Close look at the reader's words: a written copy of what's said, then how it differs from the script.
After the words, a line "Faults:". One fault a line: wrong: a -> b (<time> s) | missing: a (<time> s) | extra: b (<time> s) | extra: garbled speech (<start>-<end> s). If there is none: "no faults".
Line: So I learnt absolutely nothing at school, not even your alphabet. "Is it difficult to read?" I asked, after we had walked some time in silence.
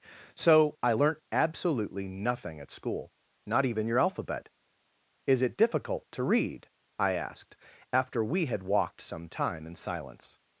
So I learnt absolutely nothing at school, not even your alphabet. "Is it difficult to read?" I asked, after we had walked some time in silence.
Faults:
no faults